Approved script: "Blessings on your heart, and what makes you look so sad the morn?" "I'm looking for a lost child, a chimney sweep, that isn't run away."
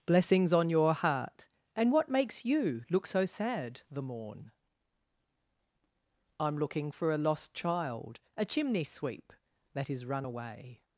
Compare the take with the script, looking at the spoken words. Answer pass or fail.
fail